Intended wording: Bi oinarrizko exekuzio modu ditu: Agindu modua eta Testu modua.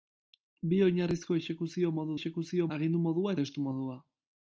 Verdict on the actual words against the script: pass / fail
fail